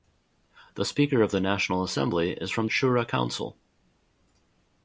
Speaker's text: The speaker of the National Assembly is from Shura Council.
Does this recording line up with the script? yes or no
yes